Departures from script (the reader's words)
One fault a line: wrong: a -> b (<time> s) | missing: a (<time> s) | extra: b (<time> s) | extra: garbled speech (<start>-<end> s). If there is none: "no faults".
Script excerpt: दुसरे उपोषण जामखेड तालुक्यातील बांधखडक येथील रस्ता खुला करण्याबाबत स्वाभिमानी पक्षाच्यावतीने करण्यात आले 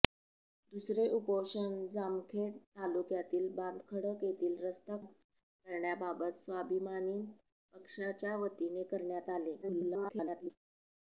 missing: खुला (5.0 s)
extra: garbled speech (9.6-10.5 s)